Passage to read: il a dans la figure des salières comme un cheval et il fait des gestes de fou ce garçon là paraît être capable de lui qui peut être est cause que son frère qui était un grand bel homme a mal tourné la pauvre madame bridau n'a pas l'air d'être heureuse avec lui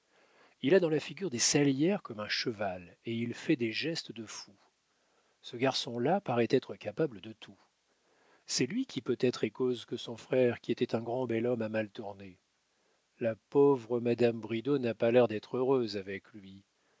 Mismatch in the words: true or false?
true